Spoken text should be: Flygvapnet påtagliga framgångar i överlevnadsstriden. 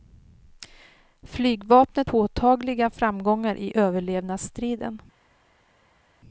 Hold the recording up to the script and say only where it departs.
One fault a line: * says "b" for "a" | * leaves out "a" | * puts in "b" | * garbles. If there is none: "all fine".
all fine